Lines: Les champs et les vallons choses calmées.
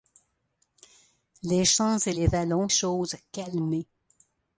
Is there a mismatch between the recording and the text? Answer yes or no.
no